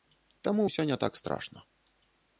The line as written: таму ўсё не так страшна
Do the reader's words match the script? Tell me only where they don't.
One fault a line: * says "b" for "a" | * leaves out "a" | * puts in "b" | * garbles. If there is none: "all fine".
all fine